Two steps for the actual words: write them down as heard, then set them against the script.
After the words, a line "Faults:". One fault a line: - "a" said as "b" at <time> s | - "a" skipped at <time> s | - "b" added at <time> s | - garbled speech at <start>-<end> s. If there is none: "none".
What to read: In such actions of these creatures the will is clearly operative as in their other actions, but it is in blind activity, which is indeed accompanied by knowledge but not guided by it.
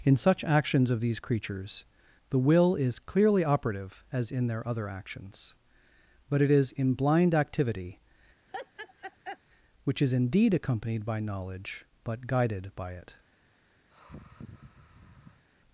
In such actions of these creatures the will is clearly operative as in their other actions, but it is in blind activity, which is indeed accompanied by knowledge but guided by it.
Faults:
- "not" skipped at 12.3 s